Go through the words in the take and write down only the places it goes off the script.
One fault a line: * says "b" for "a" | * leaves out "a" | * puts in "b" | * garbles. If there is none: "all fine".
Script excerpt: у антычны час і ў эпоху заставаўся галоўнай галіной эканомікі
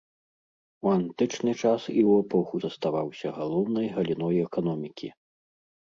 all fine